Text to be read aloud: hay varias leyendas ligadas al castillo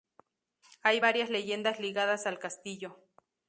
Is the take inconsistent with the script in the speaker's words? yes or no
no